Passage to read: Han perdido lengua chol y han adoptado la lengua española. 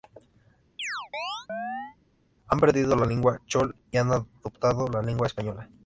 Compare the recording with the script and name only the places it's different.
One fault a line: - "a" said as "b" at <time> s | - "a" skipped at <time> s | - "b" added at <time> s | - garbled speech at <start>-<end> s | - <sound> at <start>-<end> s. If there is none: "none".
- chirp at 0.8-2.0 s
- "la" added at 3.0 s